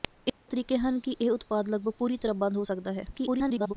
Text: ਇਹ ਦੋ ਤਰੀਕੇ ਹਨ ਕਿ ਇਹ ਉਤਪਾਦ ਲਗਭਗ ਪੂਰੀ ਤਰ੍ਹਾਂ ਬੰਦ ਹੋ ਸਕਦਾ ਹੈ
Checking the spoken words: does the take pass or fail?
fail